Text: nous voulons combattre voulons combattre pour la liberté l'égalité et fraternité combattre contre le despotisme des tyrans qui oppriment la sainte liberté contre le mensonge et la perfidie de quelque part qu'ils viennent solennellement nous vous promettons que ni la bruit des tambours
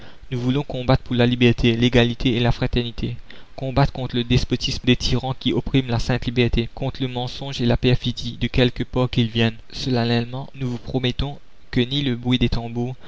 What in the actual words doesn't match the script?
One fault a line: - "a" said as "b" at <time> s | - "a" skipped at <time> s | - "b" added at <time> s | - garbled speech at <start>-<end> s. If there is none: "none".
- "voulons combattre" skipped at 1.0 s
- "la" added at 2.4 s
- "la" said as "le" at 12.0 s